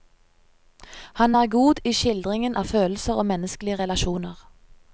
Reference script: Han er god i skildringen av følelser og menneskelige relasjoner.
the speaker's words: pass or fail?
pass